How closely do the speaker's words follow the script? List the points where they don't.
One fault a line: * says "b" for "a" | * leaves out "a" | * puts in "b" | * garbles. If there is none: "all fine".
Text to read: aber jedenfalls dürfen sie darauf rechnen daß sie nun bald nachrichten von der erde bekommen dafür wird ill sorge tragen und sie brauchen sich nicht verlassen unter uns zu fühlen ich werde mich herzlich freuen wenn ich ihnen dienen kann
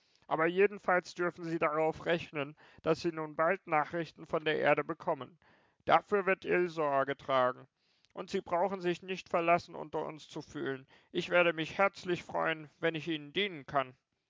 all fine